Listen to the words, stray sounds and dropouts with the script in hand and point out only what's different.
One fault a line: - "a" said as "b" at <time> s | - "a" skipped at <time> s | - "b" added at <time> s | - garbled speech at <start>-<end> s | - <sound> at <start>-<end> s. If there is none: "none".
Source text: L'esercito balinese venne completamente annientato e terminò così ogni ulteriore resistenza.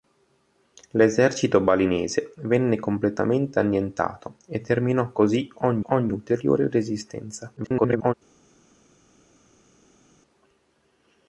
- "ogni" added at 5.9 s
- garbled speech at 7.6-8.1 s